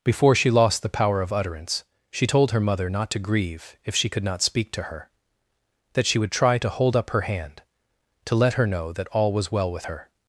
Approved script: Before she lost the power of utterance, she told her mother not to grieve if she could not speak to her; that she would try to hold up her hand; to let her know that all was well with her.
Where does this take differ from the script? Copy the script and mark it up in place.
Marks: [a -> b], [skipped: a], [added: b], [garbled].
Before she lost the power of utterance, she told her mother not to grieve if she could not speak to her; that she would try to hold up her hand; to let her know that all was well with her.